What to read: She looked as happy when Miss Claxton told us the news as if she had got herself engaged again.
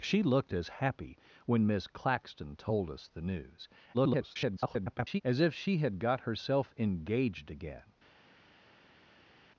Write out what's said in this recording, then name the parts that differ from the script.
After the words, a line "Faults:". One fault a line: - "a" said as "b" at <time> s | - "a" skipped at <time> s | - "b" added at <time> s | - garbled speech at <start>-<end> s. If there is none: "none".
She looked as happy when Miss Claxton told us the news [garbled] as if she had got herself engaged again.
Faults:
- garbled speech at 3.9-5.2 s